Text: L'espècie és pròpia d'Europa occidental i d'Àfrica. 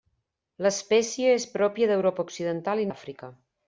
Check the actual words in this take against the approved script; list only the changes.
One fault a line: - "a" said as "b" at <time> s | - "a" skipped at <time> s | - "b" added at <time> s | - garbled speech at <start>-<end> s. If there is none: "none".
none